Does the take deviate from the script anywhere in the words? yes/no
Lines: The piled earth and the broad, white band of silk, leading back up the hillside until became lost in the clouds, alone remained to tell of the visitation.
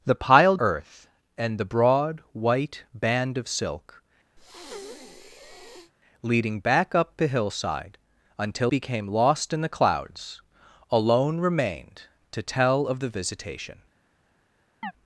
no